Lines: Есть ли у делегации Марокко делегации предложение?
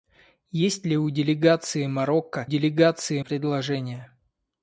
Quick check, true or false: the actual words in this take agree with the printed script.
true